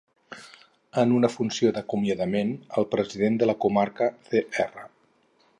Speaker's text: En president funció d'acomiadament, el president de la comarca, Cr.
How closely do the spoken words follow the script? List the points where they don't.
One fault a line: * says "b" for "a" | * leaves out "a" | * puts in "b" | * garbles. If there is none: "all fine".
* says "una" for "president"